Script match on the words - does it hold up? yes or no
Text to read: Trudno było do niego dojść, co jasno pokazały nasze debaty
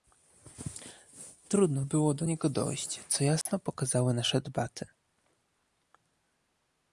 yes